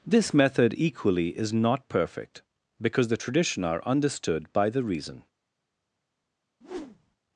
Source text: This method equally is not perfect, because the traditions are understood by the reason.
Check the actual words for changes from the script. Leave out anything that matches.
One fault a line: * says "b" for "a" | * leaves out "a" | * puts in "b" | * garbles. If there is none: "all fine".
* says "tradition" for "traditions"